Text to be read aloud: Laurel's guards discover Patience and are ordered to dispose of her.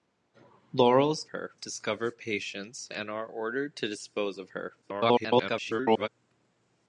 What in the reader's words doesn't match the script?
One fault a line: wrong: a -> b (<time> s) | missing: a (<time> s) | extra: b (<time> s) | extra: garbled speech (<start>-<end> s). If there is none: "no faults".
wrong: guards -> her (1.3 s)
extra: garbled speech (4.8-6.1 s)